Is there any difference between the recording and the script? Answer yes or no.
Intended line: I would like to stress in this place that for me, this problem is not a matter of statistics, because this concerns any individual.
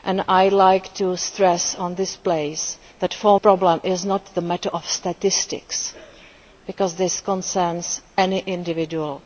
yes